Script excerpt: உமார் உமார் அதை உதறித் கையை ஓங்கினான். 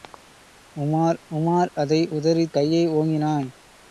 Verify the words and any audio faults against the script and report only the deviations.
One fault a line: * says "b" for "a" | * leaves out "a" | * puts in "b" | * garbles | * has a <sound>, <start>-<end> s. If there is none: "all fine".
all fine